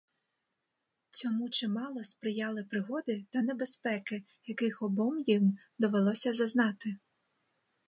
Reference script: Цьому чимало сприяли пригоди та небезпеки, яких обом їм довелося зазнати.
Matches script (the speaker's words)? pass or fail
pass